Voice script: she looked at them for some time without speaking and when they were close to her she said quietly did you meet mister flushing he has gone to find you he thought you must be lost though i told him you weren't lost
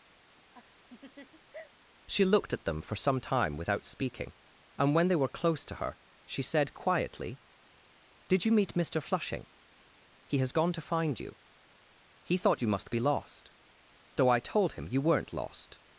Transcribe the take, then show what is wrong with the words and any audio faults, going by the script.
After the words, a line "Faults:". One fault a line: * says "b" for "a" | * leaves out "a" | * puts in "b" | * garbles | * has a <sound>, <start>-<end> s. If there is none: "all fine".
she looked at them for some time without speaking and when they were close to her she said quietly did you meet mister flushing he has gone to find you he thought you must be lost though i told him you weren't lost
Faults:
* has a laugh, 0.2-1.7 s